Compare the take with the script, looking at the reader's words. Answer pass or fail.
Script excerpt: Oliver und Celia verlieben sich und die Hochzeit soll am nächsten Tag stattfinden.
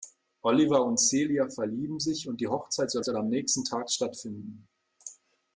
fail